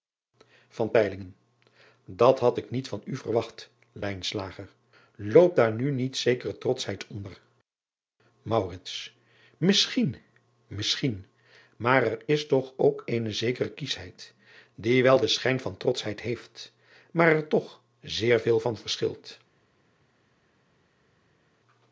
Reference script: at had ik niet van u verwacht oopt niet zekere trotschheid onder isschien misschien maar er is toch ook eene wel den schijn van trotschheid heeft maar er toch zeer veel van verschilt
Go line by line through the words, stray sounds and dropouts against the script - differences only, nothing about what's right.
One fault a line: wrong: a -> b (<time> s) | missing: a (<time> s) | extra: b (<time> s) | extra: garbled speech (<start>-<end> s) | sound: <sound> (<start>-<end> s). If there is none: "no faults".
extra: daar nu (5.5 s)
extra: zekere kieschheid die (13.3 s)